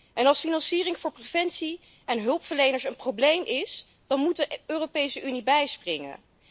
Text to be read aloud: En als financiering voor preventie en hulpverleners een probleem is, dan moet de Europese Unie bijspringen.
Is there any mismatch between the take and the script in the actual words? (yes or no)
no